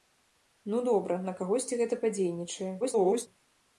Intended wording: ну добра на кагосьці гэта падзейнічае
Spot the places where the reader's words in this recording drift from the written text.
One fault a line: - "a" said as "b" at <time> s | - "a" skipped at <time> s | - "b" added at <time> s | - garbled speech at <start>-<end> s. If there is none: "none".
- garbled speech at 2.8-3.3 s